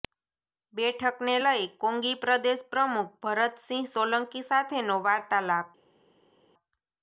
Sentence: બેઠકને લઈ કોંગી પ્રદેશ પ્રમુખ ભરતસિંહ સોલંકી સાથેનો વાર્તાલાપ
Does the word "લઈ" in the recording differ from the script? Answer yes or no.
no